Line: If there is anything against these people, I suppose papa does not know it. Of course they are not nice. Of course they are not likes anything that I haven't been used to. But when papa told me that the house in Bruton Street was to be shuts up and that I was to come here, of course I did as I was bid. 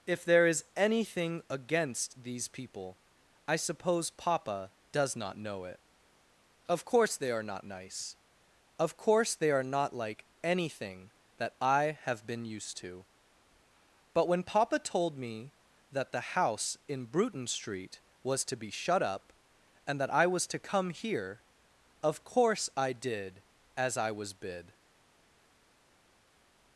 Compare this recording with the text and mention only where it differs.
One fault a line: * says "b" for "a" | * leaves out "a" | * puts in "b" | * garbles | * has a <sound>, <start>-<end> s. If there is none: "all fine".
* says "like" for "likes"
* says "have" for "haven't"
* says "shut" for "shuts"